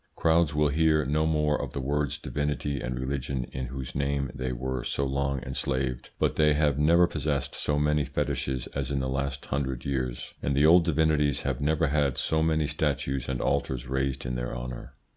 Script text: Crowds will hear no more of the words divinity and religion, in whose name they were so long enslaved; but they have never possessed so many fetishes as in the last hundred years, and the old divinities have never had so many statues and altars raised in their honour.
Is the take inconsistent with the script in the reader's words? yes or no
no